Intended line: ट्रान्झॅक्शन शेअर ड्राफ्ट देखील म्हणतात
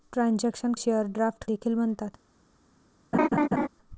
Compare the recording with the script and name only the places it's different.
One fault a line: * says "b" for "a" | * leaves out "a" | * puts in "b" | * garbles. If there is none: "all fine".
all fine